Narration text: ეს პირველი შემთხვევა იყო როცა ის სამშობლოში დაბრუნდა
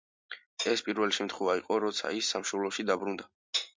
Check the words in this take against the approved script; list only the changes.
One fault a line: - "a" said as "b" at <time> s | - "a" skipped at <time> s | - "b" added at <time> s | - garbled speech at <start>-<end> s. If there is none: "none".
none